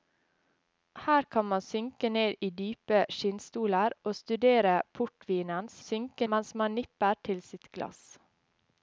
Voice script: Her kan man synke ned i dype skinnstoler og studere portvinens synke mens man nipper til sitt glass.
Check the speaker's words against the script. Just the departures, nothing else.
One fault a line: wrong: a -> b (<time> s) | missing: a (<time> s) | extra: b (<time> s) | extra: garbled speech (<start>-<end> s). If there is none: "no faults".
no faults